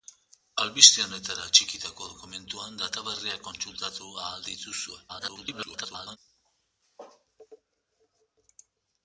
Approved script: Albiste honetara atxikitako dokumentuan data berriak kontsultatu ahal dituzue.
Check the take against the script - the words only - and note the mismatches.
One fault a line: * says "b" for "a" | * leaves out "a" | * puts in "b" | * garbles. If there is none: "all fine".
* garbles